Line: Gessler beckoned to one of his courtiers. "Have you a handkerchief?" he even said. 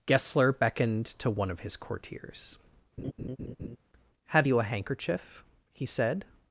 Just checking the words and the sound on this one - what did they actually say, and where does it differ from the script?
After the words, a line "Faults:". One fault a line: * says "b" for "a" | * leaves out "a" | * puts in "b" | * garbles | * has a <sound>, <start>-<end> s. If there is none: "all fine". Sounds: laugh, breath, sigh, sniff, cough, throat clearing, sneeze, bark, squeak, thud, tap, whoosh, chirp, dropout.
Gessler beckoned to one of his courtiers. "Have you a handkerchief?" he said.
Faults:
* has a laugh, 3.0-3.8 s
* leaves out "even"